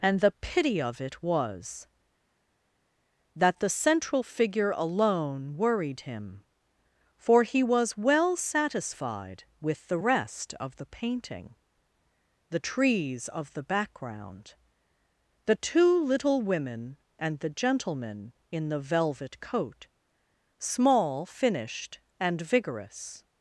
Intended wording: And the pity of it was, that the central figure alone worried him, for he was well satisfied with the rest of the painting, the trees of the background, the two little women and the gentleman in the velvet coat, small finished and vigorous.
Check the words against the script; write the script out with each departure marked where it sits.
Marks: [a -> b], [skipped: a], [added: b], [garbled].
And the pity of it was, that the central figure alone worried him, for he was well satisfied with the rest of the painting, the trees of the background, the two little women and the gentleman in the velvet coat, small finished and vigorous.